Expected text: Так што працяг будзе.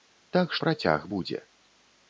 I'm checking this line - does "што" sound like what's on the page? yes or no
no